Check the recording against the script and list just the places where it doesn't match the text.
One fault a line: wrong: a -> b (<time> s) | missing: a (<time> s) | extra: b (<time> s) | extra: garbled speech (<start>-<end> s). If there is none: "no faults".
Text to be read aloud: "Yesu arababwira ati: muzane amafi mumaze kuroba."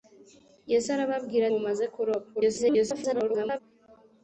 missing: ati muzane amafi (1.4 s)
extra: garbled speech (2.3-3.6 s)